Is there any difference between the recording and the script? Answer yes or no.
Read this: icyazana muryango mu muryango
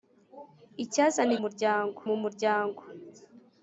no